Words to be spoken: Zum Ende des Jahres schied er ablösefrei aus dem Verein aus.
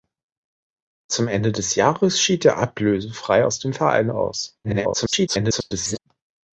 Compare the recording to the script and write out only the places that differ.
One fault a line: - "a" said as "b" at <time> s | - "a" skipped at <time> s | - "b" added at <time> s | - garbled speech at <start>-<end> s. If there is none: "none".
- garbled speech at 4.6-6.0 s